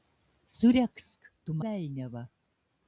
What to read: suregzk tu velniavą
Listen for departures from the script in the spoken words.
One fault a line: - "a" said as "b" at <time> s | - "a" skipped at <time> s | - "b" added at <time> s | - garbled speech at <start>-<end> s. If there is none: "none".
none